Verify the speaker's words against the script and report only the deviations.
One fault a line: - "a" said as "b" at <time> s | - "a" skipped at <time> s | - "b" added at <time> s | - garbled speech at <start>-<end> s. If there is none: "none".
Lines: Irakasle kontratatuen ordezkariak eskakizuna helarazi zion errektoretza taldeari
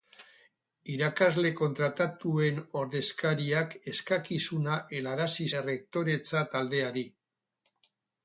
- "zion" skipped at 5.5 s